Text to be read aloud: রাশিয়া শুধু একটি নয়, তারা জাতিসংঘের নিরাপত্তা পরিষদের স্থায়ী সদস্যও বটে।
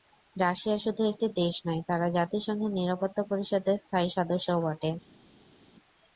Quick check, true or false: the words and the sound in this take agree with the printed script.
false